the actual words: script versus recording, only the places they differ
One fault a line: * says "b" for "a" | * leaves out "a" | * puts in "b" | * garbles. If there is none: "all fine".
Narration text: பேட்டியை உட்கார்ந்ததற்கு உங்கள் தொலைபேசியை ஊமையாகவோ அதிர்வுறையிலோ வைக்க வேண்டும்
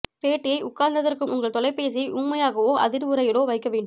all fine